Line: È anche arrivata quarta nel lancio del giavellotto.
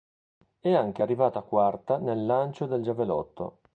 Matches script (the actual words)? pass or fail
pass